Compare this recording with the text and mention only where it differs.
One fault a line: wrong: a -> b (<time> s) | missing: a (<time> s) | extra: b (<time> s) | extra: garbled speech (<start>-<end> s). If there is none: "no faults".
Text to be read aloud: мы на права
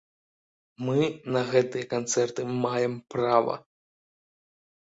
extra: гэтыя канцэрты маем (1.5 s)